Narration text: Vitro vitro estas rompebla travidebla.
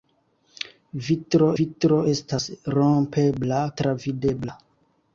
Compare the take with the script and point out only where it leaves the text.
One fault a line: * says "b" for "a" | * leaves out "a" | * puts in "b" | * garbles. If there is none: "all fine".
all fine